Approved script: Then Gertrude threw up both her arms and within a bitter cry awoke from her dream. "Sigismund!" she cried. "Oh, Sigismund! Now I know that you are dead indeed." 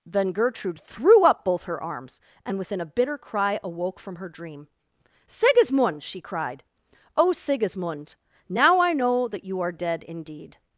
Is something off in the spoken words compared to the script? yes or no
no